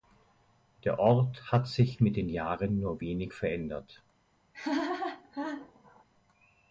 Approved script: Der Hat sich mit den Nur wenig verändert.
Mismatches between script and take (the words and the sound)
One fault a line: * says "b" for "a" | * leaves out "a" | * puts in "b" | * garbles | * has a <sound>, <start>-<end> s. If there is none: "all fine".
* puts in "Ort"
* puts in "Jahren"
* has a laugh, 4.5-6.0 s